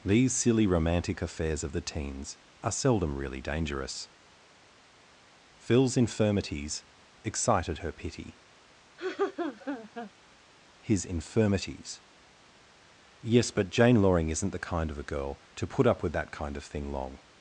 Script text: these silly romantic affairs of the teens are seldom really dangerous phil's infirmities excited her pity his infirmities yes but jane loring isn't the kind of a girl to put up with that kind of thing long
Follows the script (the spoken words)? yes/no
yes